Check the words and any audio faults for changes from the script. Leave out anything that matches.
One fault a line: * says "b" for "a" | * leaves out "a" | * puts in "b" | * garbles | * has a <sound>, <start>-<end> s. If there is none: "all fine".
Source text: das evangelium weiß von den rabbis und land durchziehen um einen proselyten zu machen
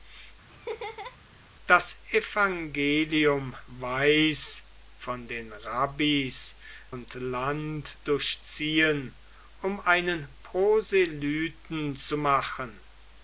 * has a laugh, 0.5-1.2 s